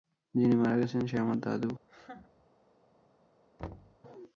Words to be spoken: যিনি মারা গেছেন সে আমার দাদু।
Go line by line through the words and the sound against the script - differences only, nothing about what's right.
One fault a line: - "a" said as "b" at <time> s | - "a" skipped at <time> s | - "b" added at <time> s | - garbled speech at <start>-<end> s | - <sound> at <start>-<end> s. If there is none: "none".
- laugh at 1.8-2.5 s
- thud at 3.6-4.0 s